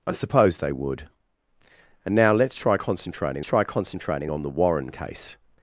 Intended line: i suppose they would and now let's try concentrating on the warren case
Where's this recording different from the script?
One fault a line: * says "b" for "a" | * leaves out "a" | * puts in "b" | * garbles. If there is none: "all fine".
* puts in "try concentrating"